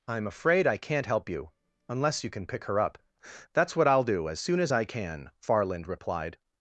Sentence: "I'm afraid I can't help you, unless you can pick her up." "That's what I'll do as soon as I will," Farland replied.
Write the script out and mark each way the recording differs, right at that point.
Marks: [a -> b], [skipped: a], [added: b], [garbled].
"I'm afraid I can't help you, unless you can pick her up." "That's what I'll do as soon as I [will," -> can] Farland replied.